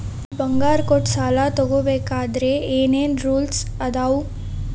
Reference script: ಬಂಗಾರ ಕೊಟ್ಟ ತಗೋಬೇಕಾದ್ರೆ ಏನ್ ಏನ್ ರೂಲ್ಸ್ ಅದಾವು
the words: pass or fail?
fail